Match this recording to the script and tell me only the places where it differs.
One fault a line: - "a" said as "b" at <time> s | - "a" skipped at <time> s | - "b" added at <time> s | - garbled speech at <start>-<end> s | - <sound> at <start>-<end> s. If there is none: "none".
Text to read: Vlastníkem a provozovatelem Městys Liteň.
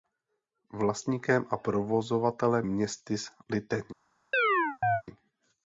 - chirp at 4.3-5.0 s